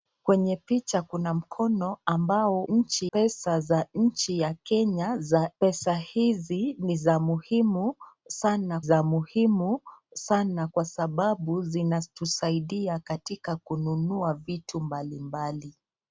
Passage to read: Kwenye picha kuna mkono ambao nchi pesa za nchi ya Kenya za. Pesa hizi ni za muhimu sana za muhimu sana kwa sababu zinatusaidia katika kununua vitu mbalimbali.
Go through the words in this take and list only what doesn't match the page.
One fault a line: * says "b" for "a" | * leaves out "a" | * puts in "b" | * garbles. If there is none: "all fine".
all fine